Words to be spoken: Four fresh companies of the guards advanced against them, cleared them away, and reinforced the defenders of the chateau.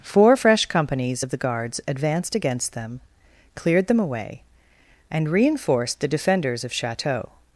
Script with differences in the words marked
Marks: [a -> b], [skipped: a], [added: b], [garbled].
Four fresh companies of the guards advanced against them, cleared them away, and reinforced the defenders of [skipped: the] chateau.